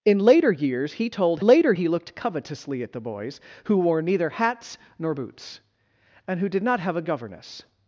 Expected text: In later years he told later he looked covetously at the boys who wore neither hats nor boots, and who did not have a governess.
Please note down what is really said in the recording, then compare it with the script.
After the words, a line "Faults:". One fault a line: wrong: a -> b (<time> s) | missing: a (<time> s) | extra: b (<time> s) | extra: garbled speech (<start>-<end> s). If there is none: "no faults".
In later years he told later he looked covetously at the boys who wore neither hats nor boots, and who did not have a governess.
Faults:
no faults